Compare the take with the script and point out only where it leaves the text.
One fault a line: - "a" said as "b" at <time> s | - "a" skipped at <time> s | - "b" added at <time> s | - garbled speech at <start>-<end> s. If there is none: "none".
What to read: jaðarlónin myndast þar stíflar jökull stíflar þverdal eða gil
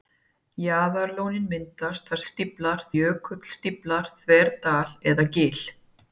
none